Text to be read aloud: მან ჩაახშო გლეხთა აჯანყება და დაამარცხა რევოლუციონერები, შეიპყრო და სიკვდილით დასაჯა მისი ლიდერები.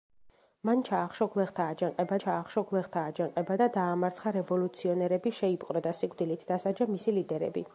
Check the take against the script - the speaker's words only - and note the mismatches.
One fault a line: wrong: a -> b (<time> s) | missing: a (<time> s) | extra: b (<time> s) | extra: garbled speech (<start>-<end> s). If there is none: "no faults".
extra: ჩაახშო გლეხთა აჯანყება (2.2 s)